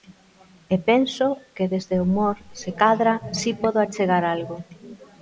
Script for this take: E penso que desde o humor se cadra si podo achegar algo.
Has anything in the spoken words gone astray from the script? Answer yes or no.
no